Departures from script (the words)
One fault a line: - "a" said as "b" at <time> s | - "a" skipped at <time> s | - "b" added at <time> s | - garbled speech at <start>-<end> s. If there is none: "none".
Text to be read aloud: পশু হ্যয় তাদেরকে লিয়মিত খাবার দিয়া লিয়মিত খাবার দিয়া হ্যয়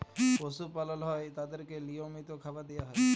- "পালল" added at 0.8 s
- "লিয়মিত খাবার দিয়া" skipped at 2.8 s